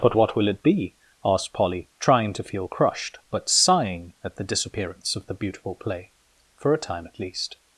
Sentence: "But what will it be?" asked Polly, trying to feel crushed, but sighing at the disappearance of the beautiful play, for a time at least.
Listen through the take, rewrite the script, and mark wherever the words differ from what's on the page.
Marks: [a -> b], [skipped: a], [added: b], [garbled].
"But what will it be?" asked Polly, trying to feel crushed, but sighing at the disappearance of the beautiful play, for a time at least.